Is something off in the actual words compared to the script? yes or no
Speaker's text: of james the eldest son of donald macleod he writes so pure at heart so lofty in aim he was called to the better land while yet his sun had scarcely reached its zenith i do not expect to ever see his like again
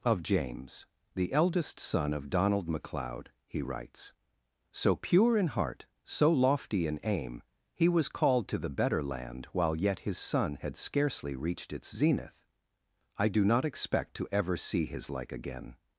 yes